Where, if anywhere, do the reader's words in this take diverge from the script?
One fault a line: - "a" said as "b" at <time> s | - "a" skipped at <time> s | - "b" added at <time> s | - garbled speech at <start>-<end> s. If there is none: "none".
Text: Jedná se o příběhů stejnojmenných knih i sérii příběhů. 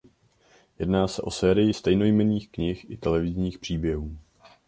- "příběhů" said as "sérii" at 1.3 s
- "sérii" said as "televizních" at 3.0 s